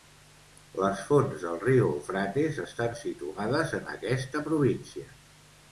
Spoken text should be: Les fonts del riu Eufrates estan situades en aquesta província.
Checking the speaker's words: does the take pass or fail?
pass